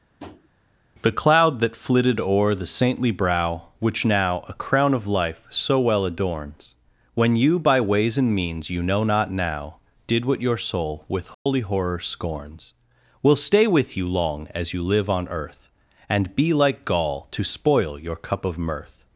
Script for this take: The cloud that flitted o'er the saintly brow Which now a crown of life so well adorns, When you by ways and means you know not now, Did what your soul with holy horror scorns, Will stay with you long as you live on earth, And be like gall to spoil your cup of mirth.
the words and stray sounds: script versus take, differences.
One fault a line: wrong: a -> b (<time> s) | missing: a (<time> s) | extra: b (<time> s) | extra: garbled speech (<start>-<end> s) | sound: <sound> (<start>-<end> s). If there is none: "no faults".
sound: tap (0.2-0.5 s)
sound: dropout (11.3-11.5 s)